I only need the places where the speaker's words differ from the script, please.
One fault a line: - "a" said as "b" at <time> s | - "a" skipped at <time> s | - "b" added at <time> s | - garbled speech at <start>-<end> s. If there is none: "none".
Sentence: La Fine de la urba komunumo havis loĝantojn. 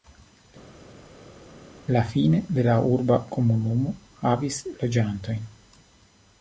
none